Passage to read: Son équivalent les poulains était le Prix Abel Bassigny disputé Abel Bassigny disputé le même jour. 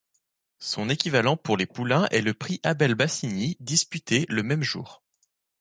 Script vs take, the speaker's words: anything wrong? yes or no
yes